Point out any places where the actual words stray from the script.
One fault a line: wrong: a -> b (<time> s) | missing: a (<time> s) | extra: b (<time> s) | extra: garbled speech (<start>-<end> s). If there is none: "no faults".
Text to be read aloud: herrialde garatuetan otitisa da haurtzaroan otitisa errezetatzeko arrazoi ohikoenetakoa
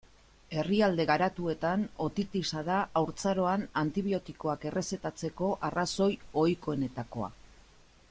wrong: otitisa -> antibiotikoak (3.8 s)